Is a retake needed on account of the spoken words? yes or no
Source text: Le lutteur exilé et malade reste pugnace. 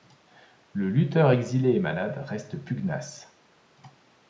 no